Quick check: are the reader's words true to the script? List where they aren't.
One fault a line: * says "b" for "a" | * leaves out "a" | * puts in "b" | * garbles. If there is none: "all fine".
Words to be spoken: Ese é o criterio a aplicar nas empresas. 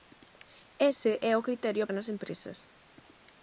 * leaves out "aplicar"